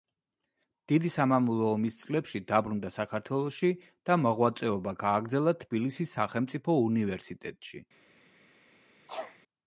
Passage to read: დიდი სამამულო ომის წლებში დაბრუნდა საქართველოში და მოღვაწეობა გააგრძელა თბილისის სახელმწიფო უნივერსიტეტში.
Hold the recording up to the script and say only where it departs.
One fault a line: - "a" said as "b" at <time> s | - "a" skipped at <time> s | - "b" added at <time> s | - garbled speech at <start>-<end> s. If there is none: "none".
none